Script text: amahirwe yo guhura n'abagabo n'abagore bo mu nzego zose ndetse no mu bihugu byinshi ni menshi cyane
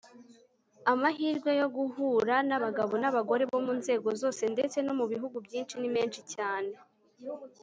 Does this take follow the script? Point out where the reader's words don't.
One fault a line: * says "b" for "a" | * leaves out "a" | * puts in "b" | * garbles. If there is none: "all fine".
all fine